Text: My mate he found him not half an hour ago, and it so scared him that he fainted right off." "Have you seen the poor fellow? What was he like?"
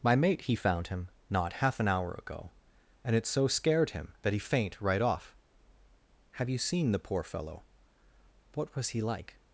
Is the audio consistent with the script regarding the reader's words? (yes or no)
no